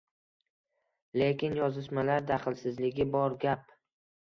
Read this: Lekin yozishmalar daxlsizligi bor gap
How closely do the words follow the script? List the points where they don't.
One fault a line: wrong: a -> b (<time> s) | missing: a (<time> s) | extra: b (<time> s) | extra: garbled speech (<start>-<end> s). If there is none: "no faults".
no faults